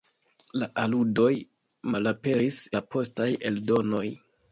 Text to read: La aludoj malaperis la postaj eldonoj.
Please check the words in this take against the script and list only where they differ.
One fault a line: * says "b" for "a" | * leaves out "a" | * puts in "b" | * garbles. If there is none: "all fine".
all fine